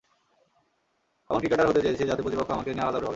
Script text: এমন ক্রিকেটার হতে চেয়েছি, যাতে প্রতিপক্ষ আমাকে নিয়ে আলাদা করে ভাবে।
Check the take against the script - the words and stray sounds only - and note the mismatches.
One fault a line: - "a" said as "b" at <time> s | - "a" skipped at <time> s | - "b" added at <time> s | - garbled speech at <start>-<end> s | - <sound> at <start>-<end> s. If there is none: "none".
none